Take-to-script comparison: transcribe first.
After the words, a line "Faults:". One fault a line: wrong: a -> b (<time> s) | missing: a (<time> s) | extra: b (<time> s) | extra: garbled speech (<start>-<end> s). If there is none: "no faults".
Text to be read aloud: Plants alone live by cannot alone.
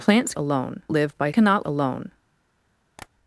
Plants alone live by cannot alone.
Faults:
no faults